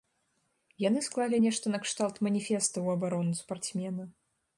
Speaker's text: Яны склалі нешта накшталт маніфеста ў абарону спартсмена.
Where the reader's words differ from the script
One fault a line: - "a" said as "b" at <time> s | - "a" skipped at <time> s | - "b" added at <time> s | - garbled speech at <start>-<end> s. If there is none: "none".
none